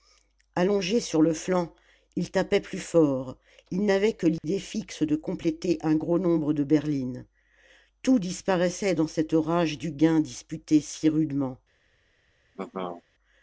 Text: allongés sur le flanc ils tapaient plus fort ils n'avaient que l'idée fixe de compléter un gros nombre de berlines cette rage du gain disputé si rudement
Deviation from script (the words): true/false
true